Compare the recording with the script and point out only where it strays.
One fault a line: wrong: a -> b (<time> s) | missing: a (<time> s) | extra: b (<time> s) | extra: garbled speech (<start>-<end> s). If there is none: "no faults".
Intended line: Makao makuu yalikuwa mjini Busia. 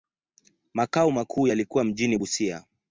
no faults